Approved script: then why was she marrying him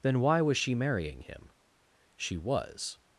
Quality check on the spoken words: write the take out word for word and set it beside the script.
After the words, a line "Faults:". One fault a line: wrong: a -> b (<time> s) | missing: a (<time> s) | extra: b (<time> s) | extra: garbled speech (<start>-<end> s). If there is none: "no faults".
then why was she marrying him she was
Faults:
extra: she was (2.2 s)